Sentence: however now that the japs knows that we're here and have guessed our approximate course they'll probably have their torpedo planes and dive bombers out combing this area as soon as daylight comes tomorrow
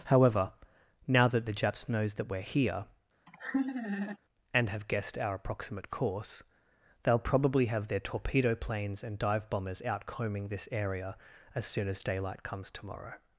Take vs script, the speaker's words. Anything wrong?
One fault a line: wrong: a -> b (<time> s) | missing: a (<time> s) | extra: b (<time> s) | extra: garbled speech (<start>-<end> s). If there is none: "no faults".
no faults